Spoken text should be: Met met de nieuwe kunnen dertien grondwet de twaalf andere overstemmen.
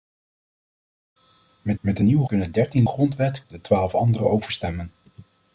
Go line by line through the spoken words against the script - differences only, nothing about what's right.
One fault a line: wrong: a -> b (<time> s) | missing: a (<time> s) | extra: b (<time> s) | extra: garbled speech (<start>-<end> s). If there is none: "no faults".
no faults